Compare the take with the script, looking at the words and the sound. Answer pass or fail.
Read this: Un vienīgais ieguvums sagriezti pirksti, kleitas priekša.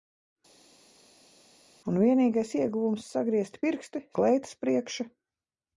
pass